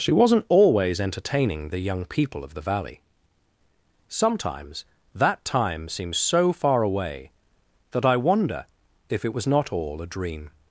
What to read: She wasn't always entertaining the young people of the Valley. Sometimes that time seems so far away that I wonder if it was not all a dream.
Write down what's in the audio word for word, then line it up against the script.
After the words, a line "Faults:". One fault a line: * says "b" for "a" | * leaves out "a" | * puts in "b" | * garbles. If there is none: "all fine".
She wasn't always entertaining the young people of the Valley. Sometimes that time seems so far away that I wonder if it was not all a dream.
Faults:
all fine